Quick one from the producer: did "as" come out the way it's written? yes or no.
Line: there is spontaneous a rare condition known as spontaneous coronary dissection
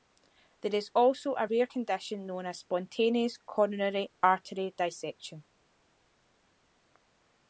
yes